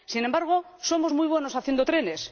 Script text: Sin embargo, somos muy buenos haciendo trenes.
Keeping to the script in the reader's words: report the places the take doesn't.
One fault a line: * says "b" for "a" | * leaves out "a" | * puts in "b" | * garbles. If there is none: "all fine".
all fine